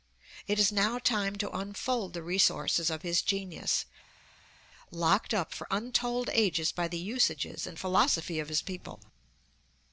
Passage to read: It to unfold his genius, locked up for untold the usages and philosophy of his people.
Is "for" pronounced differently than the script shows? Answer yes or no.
no